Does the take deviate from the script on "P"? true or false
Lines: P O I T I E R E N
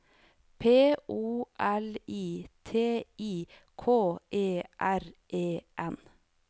false